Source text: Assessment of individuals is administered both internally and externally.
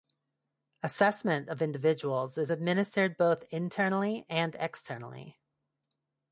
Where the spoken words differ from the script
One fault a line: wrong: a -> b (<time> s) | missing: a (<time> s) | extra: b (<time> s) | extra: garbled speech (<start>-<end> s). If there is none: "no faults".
no faults